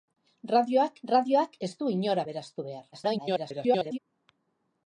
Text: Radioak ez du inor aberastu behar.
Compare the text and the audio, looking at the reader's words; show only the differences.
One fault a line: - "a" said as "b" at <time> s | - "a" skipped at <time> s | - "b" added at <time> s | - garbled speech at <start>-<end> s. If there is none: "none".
- "radioak" added at 1.1 s
- garbled speech at 2.9-4.0 s